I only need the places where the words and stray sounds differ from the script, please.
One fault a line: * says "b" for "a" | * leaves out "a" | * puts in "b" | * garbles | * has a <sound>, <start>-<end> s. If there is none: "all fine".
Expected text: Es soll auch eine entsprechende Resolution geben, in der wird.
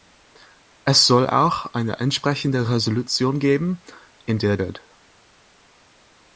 all fine